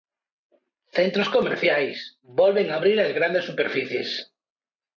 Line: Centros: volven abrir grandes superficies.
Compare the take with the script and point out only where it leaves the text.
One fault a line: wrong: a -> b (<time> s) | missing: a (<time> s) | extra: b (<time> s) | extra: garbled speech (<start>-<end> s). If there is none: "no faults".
extra: comerciais (1.3 s)
extra: as (3.0 s)